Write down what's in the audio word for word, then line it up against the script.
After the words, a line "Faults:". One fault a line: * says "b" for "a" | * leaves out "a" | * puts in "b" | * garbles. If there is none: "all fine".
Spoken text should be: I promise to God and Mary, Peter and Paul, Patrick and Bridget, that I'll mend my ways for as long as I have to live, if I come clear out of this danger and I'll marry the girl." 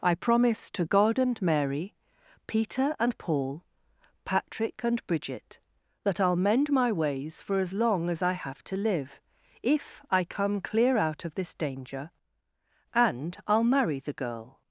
I promise to God and Mary, Peter and Paul, Patrick and Bridget, that I'll mend my ways for as long as I have to live, if I come clear out of this danger and I'll marry the girl."
Faults:
all fine